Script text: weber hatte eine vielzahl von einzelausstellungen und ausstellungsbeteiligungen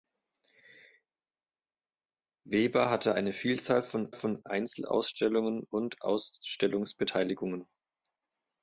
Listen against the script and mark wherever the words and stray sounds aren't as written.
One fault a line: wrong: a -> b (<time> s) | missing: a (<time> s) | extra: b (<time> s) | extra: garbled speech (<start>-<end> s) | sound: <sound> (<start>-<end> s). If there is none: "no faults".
extra: von (4.1 s)